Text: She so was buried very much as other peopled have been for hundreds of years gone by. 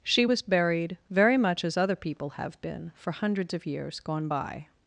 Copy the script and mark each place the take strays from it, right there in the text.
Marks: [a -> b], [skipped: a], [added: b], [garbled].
She [skipped: so] was buried very much as other [peopled -> people] have been for hundreds of years gone by.